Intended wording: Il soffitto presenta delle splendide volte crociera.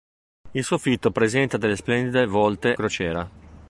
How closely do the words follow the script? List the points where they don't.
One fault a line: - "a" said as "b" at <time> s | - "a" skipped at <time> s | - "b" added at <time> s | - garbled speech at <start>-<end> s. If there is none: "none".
none